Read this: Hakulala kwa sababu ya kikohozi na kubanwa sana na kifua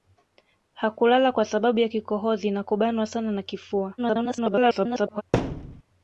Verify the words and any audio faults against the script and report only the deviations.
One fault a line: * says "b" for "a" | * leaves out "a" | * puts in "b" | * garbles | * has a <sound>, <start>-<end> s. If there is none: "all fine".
* garbles
* has a thud, 5.3-5.8 s